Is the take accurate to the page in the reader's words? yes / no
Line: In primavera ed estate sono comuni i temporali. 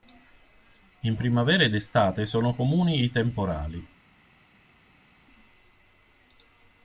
yes